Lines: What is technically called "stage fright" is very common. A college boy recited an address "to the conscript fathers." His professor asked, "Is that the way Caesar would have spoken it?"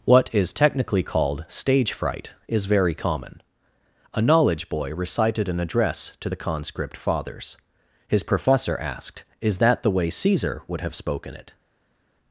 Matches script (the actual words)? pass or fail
fail